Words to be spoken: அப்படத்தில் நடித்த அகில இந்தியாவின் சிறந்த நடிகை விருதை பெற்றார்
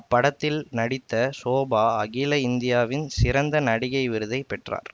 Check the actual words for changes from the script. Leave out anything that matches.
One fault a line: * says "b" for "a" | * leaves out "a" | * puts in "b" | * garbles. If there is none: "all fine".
* puts in "ஷோபா"